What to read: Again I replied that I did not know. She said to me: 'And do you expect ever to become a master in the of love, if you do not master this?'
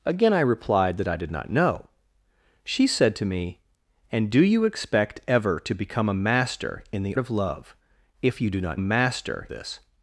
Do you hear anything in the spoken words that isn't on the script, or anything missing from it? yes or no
no